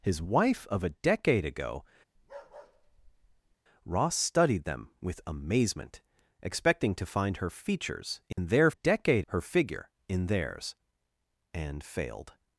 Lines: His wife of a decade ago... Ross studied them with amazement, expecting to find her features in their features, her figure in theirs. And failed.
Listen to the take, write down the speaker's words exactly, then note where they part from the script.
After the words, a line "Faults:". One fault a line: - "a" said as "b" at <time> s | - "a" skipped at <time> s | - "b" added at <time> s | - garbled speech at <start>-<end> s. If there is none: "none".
His wife of a decade ago... Ross studied them with amazement, expecting to find her features in their decade, her figure in theirs. And failed.
Faults:
- "features" said as "decade" at 8.7 s